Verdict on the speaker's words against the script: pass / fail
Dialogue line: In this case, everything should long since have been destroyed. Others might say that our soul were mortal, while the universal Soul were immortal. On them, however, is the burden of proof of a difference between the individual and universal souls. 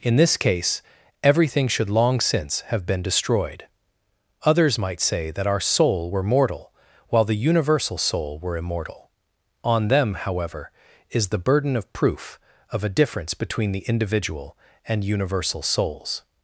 pass